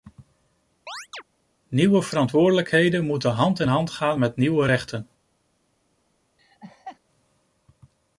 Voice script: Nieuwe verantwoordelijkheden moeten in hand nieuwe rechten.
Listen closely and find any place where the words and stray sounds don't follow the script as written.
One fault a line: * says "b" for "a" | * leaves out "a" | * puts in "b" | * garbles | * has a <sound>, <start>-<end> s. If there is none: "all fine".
* has a chirp, 0.9-1.2 s
* puts in "hand"
* puts in "gaan met"
* has a laugh, 6.4-7.0 s